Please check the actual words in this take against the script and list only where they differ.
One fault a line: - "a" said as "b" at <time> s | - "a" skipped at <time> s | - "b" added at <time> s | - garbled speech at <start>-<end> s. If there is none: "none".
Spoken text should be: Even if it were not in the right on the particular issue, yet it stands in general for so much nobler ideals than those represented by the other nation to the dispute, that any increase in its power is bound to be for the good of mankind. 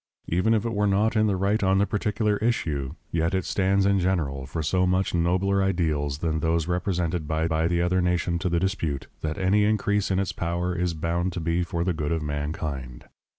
- "by" added at 7.5 s